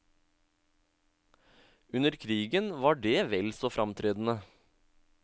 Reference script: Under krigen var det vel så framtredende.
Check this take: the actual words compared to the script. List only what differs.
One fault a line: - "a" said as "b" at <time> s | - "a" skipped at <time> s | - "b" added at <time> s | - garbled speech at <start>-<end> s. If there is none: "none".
none